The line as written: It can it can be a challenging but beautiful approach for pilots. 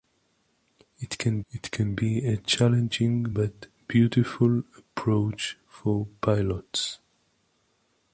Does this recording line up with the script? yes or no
yes